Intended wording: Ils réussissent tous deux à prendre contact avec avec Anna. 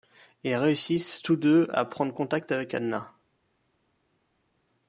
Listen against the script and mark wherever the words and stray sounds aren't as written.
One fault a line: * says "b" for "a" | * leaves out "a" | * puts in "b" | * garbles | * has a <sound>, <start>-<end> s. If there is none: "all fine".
* leaves out "avec"